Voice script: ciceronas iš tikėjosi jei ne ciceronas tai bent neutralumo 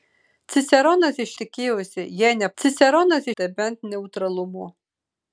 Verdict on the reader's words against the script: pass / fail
pass